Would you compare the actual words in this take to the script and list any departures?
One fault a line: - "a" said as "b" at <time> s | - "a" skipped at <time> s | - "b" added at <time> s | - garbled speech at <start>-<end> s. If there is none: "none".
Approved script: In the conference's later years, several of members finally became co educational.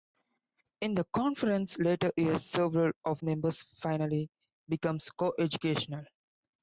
none